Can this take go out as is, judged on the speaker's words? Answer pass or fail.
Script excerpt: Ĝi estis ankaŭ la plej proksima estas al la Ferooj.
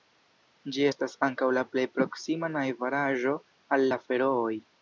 fail